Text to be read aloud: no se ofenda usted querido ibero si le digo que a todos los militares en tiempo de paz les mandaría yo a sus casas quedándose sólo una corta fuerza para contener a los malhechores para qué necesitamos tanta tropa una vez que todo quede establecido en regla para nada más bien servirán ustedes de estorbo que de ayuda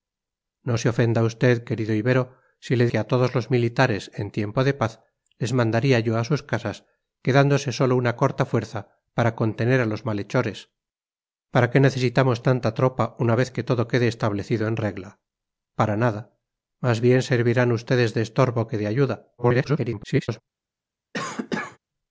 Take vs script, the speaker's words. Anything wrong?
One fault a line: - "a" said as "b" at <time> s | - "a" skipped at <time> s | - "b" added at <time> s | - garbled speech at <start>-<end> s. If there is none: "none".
- "digo" skipped at 2.9 s
- garbled speech at 19.4-20.4 s